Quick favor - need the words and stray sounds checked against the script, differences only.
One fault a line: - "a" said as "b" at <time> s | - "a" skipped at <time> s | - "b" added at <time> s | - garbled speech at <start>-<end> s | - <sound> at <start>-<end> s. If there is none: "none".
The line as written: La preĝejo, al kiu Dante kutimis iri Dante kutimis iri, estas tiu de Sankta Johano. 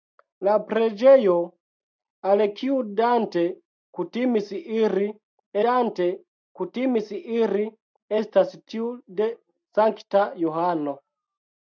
none